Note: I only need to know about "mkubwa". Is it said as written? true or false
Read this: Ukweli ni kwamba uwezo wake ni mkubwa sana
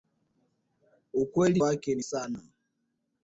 false